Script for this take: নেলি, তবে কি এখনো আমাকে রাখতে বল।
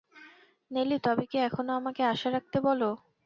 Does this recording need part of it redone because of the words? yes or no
yes